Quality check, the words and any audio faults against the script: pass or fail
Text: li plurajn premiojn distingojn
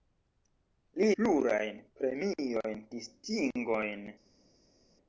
pass